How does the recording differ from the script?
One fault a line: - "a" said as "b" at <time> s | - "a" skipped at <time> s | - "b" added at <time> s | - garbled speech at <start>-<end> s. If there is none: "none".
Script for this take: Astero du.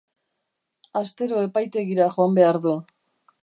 - "epaitegira joan behar" added at 1.5 s